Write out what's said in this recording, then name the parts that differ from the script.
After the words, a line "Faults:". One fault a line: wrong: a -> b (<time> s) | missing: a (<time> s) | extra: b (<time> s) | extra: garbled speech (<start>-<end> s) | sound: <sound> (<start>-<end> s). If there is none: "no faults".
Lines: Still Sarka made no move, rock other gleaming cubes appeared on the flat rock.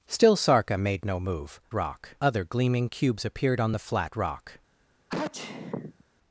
Still Sarka made no move, rock other gleaming cubes appeared on the flat rock.
Faults:
sound: sneeze (5.1-6.0 s)